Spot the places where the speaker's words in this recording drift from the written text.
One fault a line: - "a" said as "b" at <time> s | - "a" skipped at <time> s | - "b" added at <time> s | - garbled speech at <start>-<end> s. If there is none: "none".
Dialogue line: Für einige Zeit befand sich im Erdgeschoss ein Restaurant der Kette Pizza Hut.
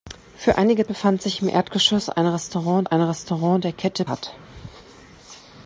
- "Zeit" skipped at 0.9 s
- "ein Restaurant" added at 2.8 s
- "Pizza" skipped at 4.0 s